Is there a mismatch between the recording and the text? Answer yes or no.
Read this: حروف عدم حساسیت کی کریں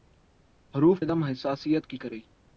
no